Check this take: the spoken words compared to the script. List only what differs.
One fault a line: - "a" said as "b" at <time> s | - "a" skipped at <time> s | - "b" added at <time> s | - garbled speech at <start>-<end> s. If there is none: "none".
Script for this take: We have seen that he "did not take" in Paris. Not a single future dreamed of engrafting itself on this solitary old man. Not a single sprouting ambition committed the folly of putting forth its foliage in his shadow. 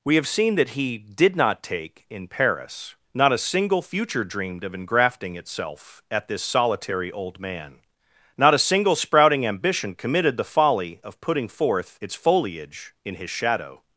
- "on" said as "at" at 6.1 s